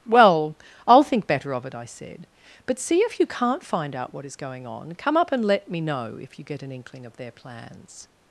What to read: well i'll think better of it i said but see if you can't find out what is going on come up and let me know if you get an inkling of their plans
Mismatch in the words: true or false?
false